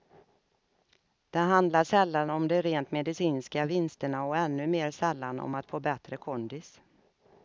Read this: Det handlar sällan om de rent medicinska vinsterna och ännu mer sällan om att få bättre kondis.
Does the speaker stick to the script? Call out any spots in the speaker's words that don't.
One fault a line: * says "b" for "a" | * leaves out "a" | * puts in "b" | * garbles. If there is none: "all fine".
all fine